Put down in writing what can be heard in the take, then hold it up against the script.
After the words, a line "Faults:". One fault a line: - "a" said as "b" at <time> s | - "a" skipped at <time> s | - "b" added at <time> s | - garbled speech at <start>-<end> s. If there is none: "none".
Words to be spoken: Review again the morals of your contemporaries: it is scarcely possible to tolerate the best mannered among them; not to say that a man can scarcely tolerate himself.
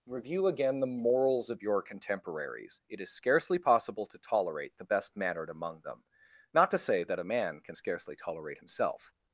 Review again the morals of your contemporaries: it is scarcely possible to tolerate the best mannered among them; not to say that a man can scarcely tolerate himself.
Faults:
none